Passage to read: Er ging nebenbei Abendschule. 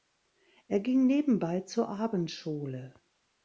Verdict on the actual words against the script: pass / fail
fail